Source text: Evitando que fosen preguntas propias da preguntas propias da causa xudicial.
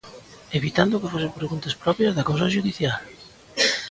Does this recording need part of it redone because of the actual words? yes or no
yes